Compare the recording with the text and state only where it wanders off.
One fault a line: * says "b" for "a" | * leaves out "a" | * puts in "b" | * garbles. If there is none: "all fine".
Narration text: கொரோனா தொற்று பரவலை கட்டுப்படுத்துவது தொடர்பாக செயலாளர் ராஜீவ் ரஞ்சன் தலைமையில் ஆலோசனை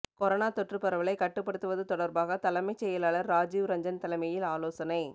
* puts in "தலைமைச்"